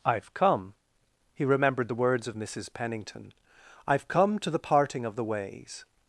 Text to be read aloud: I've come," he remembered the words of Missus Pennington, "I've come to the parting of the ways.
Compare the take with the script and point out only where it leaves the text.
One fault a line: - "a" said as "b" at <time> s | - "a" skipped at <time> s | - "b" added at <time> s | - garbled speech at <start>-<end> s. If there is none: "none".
none